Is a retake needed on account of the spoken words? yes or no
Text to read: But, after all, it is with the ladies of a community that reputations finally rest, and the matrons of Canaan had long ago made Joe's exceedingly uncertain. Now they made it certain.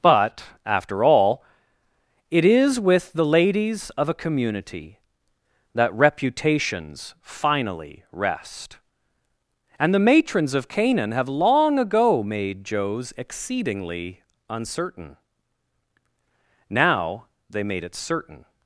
yes